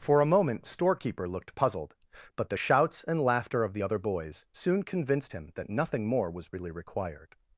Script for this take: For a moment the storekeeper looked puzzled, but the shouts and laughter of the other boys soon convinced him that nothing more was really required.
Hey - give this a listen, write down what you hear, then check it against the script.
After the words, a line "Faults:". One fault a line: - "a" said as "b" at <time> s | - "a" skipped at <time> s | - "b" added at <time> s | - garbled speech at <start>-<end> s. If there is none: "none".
For a moment storekeeper looked puzzled, but the shouts and laughter of the other boys soon convinced him that nothing more was really required.
Faults:
- "the" skipped at 0.7 s